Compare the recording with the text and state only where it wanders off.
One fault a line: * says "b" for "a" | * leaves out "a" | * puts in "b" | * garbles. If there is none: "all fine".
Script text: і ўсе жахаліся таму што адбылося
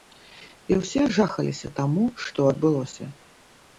all fine